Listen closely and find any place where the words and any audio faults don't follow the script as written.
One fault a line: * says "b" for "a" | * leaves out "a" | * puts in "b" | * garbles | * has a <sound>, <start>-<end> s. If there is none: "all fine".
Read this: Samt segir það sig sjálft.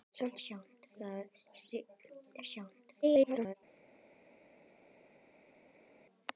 * says "sjálft" for "segir"
* garbles